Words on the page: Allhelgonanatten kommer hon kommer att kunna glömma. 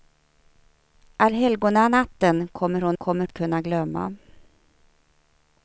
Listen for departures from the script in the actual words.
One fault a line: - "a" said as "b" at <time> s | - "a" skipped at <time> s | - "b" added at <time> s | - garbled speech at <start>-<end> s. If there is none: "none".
none